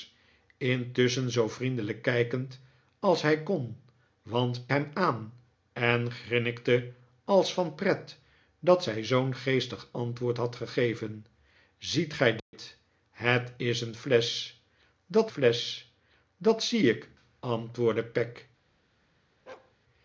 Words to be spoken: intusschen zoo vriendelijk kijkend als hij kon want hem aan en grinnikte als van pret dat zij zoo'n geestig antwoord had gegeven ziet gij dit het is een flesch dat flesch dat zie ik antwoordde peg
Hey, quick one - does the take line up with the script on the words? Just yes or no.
yes